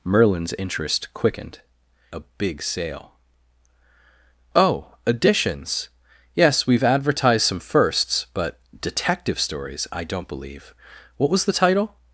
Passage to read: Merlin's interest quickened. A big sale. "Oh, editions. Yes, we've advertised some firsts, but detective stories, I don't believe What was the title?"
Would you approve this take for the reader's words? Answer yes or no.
yes